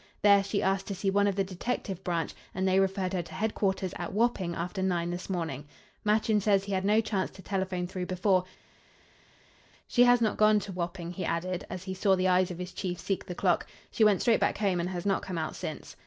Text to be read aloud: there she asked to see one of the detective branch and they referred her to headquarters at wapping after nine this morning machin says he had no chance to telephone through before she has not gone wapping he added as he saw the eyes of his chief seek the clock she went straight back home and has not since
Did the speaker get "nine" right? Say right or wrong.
right